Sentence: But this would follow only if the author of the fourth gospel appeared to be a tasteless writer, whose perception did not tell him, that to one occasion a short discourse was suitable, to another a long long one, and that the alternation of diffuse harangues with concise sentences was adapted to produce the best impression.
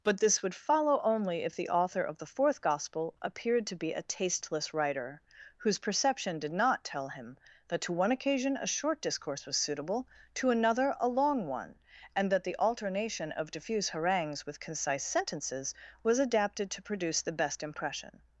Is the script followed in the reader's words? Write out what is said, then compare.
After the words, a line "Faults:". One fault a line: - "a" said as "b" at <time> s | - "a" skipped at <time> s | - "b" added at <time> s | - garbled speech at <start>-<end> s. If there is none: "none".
But this would follow only if the author of the fourth gospel appeared to be a tasteless writer, whose perception did not tell him, that to one occasion a short discourse was suitable, to another a long one, and that the alternation of diffuse harangues with concise sentences was adapted to produce the best impression.
Faults:
- "long" skipped at 11.4 s